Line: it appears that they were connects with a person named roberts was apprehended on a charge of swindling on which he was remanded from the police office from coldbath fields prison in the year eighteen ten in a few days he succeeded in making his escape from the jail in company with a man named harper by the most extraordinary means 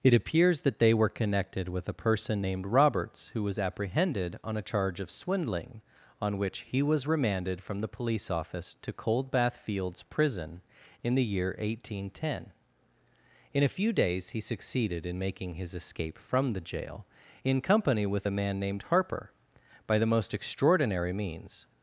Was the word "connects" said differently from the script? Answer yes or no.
yes